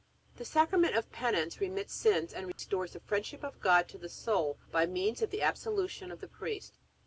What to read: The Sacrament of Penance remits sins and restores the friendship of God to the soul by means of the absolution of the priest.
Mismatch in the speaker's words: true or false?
false